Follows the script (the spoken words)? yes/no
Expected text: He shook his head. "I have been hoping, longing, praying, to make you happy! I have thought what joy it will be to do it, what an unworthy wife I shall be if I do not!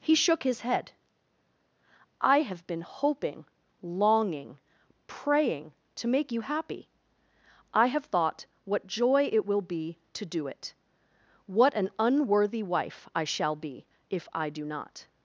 yes